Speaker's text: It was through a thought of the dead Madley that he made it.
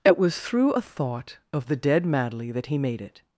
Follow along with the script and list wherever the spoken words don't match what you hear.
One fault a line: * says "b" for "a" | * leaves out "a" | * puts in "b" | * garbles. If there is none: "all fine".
all fine